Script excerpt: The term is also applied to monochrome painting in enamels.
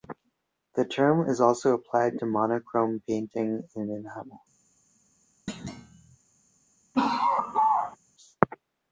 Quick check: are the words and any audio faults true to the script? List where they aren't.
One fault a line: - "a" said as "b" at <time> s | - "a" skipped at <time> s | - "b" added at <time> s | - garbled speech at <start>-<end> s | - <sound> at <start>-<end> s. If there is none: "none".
- thud at 5.5-6.2 s
- laugh at 6.9-8.0 s